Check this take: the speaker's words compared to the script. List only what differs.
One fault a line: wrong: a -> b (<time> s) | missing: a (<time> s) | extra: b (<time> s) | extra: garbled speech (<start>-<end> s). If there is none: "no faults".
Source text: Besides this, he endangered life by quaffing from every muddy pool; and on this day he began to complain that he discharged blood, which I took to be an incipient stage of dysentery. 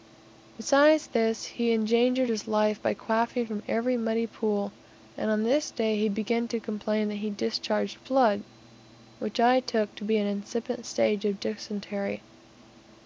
extra: his (2.3 s)